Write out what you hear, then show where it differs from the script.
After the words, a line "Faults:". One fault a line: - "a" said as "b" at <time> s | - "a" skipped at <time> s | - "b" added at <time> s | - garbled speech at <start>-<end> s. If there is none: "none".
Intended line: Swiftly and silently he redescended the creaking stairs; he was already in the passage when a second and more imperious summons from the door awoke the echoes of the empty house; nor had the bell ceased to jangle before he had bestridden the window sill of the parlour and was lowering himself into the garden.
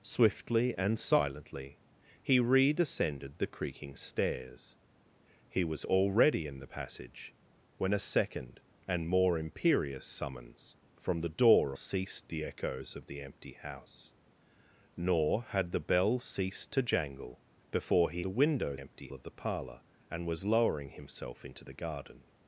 Swiftly and silently he redescended the creaking stairs; he was already in the passage when a second and more imperious summons from the door ceased the echoes of the empty house; nor had the bell ceased to jangle before he the window empty of the parlour and was lowering himself into the garden.
Faults:
- "awoke" said as "ceased" at 11.7 s
- "had bestridden" skipped at 18.2 s
- "sill" said as "empty" at 18.8 s